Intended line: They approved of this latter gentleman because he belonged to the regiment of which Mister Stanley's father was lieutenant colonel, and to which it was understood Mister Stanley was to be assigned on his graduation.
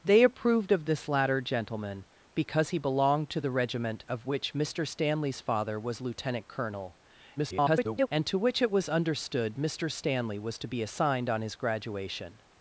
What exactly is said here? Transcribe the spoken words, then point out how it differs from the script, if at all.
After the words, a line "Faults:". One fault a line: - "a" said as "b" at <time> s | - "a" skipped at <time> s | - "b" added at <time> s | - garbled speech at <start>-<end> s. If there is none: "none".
They approved of this latter gentleman because he belonged to the regiment of which Mister Stanley's father was lieutenant colonel, [garbled] and to which it was understood Mister Stanley was to be assigned on his graduation.
Faults:
- garbled speech at 7.4-8.1 s